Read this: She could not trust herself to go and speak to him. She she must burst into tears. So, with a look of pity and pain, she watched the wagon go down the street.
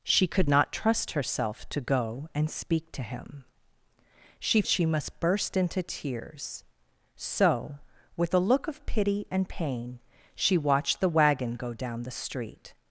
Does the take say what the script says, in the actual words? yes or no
yes